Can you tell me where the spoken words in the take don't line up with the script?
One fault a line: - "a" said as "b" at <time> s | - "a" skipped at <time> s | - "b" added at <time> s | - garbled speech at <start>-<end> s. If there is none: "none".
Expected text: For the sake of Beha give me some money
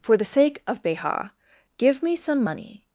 none